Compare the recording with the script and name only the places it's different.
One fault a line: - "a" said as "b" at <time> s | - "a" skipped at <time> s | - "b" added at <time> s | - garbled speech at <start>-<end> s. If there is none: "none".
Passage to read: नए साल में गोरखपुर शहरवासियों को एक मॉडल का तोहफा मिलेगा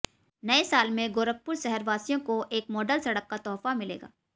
- "सड़क" added at 3.0 s